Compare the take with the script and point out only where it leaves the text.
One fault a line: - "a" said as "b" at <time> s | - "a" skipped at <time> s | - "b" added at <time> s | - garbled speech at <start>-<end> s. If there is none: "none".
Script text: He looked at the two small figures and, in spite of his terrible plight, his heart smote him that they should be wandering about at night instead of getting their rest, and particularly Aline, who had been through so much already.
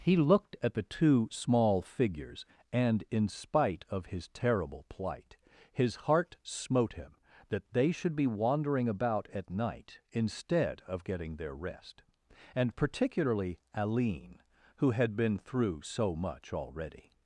none